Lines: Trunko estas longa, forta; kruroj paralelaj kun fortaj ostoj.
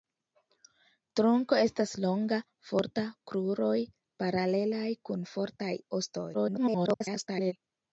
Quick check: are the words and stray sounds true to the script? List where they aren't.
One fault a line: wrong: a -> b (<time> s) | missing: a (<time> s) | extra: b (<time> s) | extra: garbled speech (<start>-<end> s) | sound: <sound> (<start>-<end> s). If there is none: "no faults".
extra: garbled speech (6.3-7.5 s)